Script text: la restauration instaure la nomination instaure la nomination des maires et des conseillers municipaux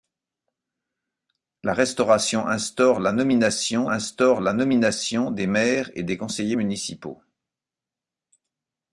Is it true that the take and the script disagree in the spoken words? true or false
false